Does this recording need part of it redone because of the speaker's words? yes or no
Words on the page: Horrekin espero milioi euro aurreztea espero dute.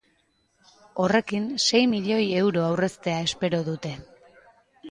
yes